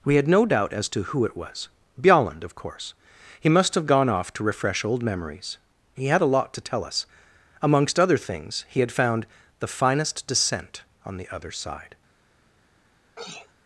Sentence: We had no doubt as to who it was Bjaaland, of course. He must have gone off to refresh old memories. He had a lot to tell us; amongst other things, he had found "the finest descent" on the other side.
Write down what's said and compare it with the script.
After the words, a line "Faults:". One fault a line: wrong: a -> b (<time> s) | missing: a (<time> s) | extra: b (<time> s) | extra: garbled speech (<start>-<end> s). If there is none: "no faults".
We had no doubt as to who it was Bjaaland, of course. He must have gone off to refresh old memories. He had a lot to tell us; amongst other things, he had found "the finest descent" on the other side.
Faults:
no faults